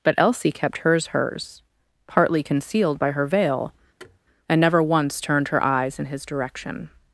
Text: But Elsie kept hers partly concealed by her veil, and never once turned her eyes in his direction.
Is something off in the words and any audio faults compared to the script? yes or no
yes